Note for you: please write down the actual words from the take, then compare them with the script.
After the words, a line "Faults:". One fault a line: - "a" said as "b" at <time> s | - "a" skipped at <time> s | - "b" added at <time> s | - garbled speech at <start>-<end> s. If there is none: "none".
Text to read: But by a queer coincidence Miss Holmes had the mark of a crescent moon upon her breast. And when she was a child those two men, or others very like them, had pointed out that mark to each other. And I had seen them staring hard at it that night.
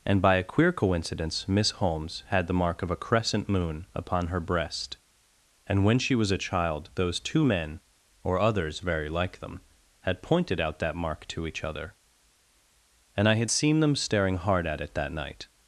And by a queer coincidence Miss Holmes had the mark of a crescent moon upon her breast. And when she was a child those two men, or others very like them, had pointed out that mark to each other. And I had seen them staring hard at it that night.
Faults:
- "But" said as "And" at 0.1 s